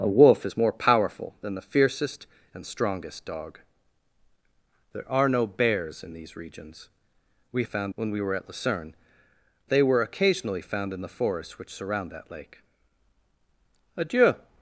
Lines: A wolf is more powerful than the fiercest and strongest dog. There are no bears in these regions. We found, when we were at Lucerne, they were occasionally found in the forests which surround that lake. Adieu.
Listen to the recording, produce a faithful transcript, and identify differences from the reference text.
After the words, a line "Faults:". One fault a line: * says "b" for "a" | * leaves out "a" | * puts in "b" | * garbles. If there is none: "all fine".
A wolf is more powerful than the fiercest and strongest dog. There are no bears in these regions. We found, when we were at Lucerne, they were occasionally found in the forests which surround that lake. Adieu.
Faults:
all fine